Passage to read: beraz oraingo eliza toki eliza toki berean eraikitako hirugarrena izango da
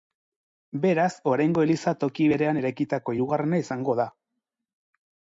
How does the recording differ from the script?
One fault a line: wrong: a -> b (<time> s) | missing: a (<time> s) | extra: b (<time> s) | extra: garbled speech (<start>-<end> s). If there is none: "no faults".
missing: eliza toki (2.2 s)